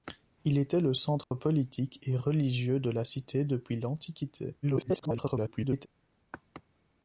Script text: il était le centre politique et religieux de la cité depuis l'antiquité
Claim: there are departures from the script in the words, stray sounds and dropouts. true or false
true